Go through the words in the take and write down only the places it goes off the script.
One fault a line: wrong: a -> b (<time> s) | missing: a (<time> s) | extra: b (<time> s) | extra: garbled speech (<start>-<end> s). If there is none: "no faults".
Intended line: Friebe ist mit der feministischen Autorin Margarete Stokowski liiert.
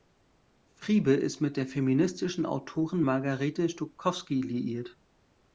no faults